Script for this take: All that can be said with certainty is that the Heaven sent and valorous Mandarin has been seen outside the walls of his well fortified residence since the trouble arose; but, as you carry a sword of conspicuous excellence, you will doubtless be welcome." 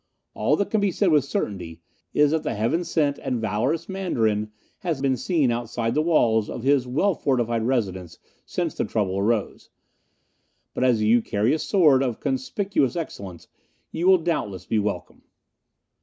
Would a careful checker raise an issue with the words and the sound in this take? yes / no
no